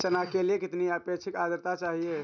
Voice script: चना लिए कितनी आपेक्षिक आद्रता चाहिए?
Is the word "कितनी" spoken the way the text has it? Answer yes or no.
yes